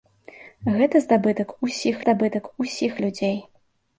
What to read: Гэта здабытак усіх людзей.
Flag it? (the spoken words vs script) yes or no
yes